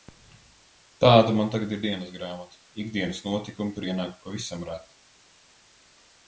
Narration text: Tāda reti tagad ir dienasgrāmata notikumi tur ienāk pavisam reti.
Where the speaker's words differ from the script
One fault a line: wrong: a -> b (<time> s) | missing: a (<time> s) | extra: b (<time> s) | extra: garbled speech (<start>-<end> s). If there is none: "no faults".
wrong: reti -> man (1.4 s)
extra: ikdienas (2.8 s)